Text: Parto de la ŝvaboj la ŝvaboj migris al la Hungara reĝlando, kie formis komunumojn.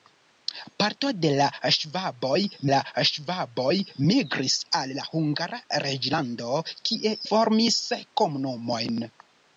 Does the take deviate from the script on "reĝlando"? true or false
false